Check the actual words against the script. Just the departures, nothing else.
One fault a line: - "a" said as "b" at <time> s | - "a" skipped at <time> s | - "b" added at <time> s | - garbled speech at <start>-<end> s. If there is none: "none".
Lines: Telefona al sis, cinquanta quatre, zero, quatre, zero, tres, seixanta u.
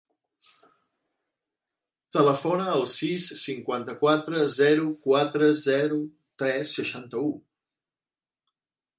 none